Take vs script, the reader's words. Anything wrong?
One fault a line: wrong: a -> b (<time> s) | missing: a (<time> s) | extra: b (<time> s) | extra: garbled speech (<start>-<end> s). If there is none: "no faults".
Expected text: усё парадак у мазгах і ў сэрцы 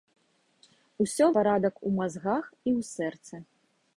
no faults